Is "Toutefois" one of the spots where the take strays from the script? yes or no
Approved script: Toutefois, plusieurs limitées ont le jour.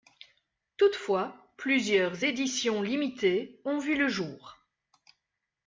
no